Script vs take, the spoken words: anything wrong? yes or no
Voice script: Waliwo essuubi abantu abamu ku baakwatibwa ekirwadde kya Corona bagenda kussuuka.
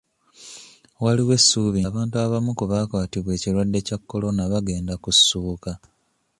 no